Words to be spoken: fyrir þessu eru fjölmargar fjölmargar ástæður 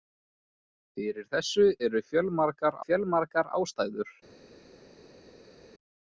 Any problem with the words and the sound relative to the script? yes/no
no